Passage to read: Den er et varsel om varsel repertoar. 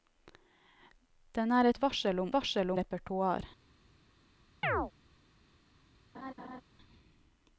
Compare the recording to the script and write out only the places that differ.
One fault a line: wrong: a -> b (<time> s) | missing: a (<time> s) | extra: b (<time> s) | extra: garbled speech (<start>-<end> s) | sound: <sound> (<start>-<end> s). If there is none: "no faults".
sound: chirp (4.6-4.9 s)
sound: laugh (6.1-6.6 s)